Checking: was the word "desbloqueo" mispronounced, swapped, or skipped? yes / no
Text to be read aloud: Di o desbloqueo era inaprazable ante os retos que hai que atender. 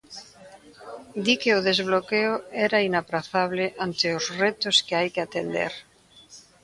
no